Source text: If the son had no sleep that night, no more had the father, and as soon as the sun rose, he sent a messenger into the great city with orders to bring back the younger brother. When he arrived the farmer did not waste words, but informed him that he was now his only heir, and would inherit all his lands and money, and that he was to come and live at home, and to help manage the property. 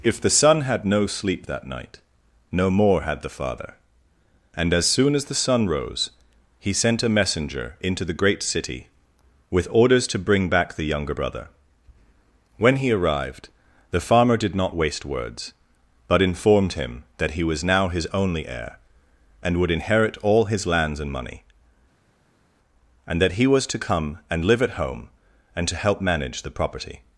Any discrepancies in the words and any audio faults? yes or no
no